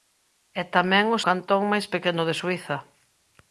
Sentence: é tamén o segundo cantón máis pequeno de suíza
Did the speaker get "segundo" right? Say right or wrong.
wrong